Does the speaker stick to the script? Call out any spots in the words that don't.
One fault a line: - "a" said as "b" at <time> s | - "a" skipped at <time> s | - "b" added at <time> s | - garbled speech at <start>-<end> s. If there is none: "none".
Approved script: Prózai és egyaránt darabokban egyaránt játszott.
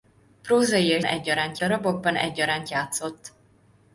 none